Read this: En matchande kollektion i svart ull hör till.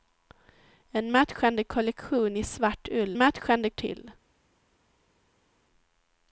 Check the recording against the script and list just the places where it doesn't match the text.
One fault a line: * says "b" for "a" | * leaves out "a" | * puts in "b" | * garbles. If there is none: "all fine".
* says "matchande" for "hör"